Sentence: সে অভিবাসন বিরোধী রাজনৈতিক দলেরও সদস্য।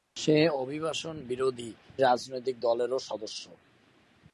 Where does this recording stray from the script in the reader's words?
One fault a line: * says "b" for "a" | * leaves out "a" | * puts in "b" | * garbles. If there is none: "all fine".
all fine